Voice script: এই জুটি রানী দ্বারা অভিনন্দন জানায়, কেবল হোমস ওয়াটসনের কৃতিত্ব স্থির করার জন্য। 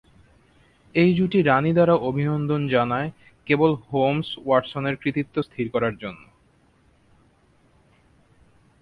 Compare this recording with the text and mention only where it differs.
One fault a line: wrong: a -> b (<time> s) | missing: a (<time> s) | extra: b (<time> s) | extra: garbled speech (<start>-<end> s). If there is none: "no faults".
no faults